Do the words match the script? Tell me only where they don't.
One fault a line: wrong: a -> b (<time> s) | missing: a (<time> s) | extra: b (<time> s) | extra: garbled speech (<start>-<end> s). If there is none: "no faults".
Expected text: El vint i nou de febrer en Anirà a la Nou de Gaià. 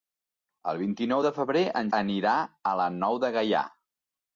no faults